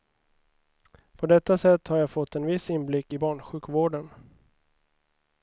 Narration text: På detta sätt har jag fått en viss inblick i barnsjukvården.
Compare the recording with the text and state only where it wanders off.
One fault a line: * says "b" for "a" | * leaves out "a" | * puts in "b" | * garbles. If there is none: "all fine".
all fine